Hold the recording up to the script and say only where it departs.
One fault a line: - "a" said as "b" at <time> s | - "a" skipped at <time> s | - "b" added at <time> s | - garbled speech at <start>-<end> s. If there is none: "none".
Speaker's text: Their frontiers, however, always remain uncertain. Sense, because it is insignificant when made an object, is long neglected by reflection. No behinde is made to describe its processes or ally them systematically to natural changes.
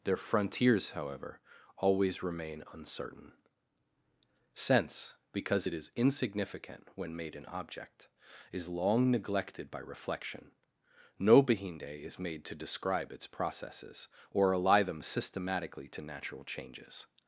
none